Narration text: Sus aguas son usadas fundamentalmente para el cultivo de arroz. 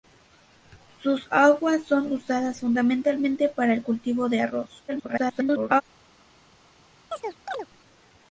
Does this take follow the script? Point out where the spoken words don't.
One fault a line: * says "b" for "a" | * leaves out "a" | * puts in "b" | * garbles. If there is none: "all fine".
* garbles